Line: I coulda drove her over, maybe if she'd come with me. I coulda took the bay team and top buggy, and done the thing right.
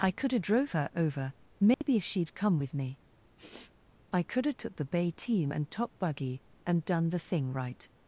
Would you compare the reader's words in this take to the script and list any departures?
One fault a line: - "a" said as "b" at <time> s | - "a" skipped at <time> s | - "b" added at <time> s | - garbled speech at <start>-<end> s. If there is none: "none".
none